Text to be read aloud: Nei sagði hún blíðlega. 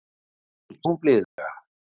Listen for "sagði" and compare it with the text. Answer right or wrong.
wrong